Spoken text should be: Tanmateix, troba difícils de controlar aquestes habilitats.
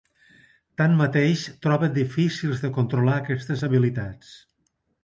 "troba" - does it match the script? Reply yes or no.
yes